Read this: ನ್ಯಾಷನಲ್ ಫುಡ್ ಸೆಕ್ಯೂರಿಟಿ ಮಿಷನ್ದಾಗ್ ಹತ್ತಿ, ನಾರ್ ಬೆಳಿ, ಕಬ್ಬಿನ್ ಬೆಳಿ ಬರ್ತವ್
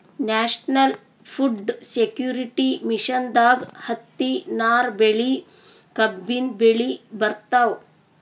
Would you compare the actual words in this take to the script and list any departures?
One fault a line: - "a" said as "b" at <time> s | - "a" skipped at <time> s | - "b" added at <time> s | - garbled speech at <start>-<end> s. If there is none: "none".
none